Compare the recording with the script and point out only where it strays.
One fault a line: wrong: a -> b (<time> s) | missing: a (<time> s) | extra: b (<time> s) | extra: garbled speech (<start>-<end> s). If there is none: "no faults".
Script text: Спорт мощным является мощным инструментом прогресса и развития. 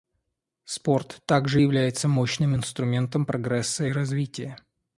wrong: мощным -> также (1.2 s)